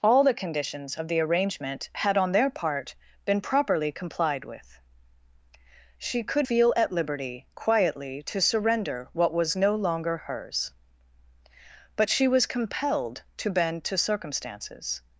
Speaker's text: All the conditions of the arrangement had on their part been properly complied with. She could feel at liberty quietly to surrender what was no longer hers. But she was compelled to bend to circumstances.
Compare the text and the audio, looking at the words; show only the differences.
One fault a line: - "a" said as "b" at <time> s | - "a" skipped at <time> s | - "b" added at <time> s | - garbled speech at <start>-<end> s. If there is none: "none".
none